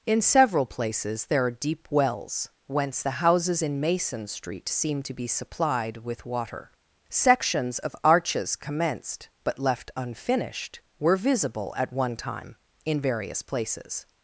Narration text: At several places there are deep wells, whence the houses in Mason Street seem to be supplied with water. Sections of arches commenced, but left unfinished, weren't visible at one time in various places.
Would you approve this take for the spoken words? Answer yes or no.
no